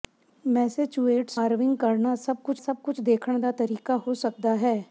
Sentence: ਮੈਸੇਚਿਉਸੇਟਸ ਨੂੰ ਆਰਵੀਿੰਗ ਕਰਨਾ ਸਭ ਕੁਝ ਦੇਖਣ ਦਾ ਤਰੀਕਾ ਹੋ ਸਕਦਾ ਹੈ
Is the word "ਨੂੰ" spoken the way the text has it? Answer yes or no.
no